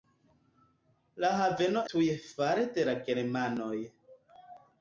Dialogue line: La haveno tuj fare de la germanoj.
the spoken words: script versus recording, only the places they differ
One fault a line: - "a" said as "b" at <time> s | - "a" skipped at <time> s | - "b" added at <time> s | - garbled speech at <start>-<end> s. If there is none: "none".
none